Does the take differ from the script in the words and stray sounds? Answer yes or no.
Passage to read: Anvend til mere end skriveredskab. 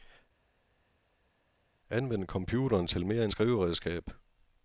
yes